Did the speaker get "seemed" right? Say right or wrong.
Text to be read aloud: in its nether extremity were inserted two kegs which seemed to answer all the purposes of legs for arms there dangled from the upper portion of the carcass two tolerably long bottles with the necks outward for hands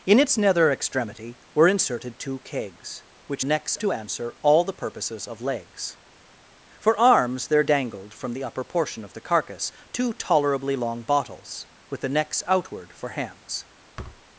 wrong